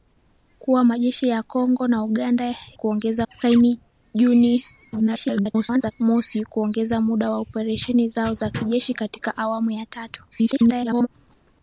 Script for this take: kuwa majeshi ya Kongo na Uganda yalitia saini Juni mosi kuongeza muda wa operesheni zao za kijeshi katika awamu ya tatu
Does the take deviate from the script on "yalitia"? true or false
true